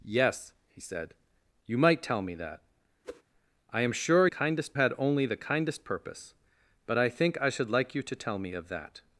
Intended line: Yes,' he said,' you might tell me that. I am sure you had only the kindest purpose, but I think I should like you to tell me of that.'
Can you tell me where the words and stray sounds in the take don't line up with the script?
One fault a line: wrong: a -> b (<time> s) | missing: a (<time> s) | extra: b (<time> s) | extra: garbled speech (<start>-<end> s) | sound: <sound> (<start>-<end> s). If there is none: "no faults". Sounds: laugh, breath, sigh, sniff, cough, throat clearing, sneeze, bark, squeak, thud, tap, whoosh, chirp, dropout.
sound: whoosh (3.0-3.2 s)
wrong: you -> kindest (4.3 s)